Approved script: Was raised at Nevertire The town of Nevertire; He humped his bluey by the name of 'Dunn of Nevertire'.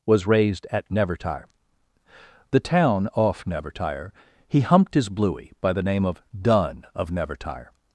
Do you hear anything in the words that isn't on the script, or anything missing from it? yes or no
yes